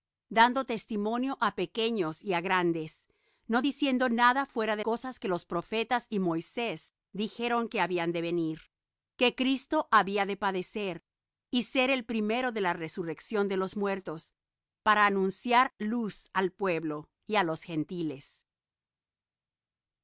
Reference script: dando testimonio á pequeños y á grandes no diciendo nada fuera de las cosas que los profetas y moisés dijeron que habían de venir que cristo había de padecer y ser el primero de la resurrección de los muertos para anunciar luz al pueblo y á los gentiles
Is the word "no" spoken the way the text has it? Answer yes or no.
yes